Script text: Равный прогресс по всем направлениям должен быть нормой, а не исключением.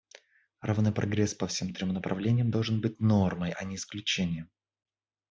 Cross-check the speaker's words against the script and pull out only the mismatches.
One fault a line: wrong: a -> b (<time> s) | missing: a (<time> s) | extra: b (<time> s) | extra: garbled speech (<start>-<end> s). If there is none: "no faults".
extra: трем (1.7 s)